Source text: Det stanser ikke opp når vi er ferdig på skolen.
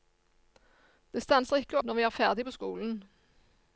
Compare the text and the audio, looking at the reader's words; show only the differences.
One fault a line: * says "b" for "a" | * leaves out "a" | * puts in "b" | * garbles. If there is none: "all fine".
* leaves out "opp"